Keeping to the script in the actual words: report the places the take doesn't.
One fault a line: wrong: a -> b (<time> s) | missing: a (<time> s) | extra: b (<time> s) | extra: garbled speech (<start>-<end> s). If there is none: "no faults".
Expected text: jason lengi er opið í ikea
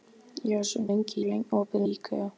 no faults